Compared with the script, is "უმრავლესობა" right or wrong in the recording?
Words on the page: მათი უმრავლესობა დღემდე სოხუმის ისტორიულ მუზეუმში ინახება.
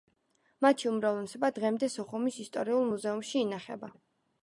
right